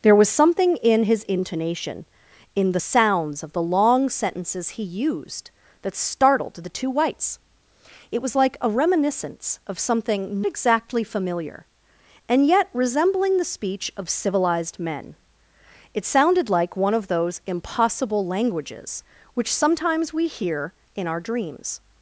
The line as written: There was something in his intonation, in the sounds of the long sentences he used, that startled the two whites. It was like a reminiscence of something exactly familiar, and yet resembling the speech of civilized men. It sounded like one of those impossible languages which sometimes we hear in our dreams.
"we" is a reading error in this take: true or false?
false